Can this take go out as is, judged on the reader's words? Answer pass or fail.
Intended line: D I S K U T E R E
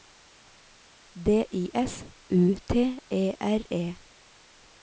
fail